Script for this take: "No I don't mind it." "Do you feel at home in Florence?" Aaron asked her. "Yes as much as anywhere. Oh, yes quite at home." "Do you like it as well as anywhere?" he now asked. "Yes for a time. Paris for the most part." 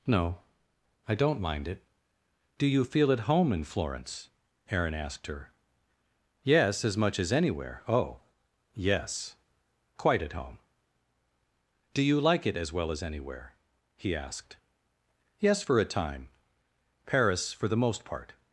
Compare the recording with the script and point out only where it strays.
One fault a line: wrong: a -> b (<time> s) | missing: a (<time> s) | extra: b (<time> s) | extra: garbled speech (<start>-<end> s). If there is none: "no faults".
missing: now (14.1 s)